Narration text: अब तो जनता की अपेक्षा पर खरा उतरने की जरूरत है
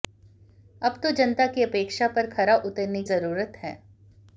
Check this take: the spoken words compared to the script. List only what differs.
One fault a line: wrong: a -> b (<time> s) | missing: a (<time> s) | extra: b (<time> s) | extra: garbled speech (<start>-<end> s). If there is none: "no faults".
missing: की (3.0 s)